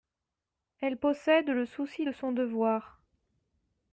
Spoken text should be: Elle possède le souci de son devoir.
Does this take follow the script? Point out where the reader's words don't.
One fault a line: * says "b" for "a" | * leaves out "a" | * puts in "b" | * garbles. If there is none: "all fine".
all fine